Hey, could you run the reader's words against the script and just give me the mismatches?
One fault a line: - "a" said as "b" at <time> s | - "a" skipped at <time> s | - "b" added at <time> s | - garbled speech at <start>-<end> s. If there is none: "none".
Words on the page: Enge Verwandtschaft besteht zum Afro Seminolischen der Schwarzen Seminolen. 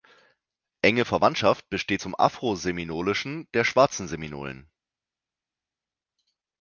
none